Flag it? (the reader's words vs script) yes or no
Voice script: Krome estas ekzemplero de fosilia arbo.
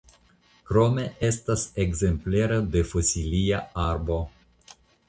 no